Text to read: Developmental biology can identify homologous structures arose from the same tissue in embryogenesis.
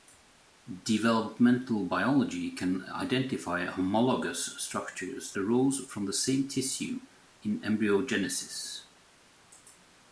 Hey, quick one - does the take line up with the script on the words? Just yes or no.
yes